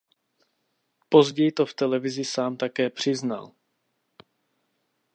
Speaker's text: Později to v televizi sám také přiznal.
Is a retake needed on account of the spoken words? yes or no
no